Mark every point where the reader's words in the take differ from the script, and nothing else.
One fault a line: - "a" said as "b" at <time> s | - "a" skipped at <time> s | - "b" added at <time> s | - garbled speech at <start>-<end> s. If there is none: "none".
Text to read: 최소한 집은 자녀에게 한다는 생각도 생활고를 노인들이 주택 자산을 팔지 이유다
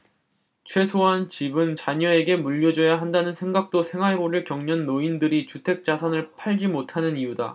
- "물려줘야" added at 2.4 s
- "겪는" added at 4.4 s
- "못하는" added at 6.7 s